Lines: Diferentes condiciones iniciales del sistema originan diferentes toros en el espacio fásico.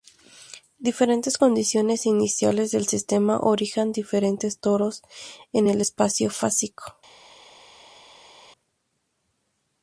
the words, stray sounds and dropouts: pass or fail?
pass